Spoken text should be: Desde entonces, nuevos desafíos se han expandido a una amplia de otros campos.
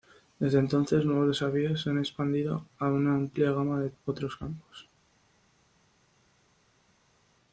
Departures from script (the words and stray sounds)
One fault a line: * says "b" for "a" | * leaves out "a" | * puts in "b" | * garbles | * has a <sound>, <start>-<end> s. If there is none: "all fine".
* puts in "gama"